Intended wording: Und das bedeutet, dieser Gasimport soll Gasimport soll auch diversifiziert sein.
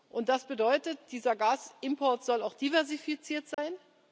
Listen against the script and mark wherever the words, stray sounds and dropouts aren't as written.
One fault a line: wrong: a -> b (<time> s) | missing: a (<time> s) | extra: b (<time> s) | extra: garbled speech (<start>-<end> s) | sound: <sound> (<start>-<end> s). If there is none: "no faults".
missing: Gasimport soll (2.4 s)
sound: dropout (3.5-3.6 s)